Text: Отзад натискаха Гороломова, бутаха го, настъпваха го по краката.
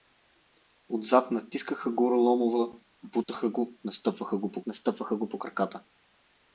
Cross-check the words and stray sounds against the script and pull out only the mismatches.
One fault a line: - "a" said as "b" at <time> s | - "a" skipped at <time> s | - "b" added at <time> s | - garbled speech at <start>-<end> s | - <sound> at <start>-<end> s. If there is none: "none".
- dropout at 3.2-3.3 s
- "настъпваха го по" added at 4.7 s